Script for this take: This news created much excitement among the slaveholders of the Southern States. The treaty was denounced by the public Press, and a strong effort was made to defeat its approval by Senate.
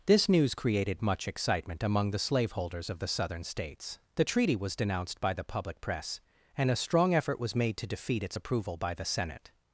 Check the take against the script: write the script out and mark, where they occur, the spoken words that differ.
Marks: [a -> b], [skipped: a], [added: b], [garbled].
This news created much excitement among the slaveholders of the Southern States. The treaty was denounced by the public Press, and a strong effort was made to defeat its approval by [added: the] Senate.